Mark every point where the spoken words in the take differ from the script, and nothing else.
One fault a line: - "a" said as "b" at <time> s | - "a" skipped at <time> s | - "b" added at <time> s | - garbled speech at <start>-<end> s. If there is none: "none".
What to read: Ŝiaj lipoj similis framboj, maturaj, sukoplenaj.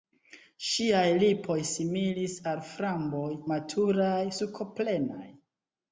- "al" added at 2.5 s